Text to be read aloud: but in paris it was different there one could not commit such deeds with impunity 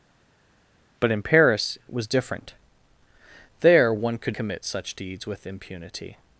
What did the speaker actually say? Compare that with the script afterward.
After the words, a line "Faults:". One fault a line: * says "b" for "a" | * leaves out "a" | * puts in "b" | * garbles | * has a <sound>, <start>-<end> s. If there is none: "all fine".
but in paris it was different there one could commit such deeds with impunity
Faults:
* leaves out "not"